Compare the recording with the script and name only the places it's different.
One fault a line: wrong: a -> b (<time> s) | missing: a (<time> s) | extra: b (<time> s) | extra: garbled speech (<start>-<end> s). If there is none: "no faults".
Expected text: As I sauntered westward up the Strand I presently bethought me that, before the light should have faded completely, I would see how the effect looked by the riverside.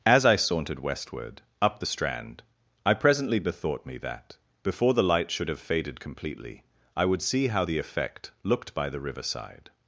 no faults